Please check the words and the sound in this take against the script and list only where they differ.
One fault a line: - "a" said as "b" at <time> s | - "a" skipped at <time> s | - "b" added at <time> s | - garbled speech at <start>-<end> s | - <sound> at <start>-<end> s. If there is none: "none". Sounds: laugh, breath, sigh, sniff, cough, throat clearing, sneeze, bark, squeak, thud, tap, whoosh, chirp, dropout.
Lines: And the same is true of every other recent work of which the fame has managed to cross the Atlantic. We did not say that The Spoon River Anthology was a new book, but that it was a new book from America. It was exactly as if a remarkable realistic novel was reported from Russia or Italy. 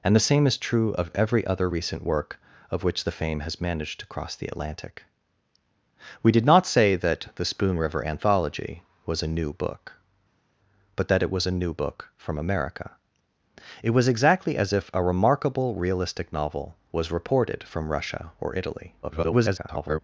- garbled speech at 19.0-20.0 s